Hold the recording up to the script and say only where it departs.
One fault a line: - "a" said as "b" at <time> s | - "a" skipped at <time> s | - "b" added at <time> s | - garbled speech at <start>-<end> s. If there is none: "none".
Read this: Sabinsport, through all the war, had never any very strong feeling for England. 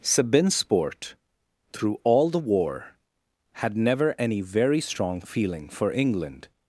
none